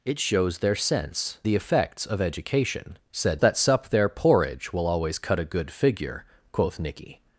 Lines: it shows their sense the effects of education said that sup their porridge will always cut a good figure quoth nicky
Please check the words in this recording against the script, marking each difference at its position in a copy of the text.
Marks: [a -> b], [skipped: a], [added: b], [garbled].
it shows their sense the effects of education said that sup their porridge will always cut a good figure quoth nicky